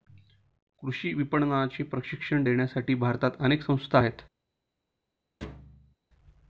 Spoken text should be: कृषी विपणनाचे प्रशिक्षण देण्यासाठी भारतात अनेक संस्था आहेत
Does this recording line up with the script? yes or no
yes